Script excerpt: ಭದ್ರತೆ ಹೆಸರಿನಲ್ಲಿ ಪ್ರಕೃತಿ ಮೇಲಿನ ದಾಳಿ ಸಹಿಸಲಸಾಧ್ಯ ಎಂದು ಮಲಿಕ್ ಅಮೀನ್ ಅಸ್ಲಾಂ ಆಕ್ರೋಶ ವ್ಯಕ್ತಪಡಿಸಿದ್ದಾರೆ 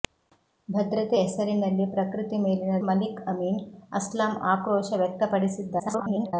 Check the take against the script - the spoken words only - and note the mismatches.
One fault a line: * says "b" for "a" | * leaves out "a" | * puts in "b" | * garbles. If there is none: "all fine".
* leaves out "ದಾಳಿ ಸಹಿಸಲಸಾಧ್ಯ ಎಂದು"
* garbles